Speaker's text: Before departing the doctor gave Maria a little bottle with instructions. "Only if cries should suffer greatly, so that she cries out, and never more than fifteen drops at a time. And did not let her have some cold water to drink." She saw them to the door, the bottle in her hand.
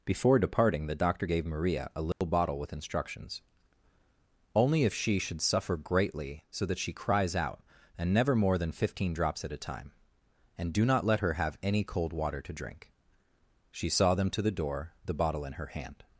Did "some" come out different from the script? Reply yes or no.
yes